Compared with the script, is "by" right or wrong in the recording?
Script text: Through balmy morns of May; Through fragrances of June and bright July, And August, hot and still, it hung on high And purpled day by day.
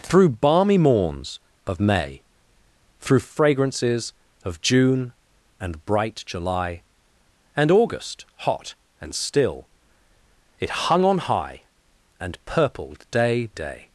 wrong